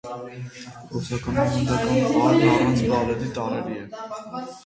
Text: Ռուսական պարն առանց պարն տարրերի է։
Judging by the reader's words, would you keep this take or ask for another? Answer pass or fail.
fail